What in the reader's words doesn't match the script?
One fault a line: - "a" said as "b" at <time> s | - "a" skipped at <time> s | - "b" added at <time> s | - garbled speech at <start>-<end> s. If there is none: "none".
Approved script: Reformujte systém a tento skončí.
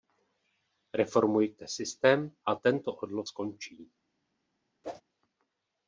- "odlov" added at 2.9 s